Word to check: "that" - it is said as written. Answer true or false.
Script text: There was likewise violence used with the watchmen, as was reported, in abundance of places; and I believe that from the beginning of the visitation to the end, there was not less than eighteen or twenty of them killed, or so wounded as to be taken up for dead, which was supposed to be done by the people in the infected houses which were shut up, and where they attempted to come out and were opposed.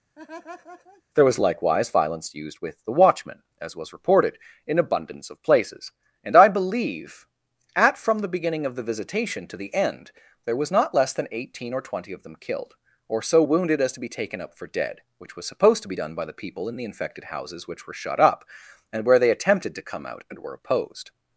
false